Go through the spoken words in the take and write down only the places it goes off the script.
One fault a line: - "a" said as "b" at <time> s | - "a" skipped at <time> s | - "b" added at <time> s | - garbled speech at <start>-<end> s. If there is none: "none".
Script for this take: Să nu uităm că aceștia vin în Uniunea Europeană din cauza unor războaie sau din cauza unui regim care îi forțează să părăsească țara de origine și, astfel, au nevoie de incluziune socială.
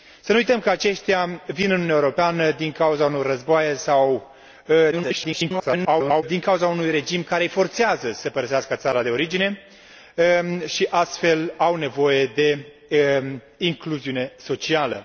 - garbled speech at 4.9-6.2 s